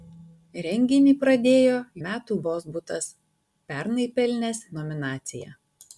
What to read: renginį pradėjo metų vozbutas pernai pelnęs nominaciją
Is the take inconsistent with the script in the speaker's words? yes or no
no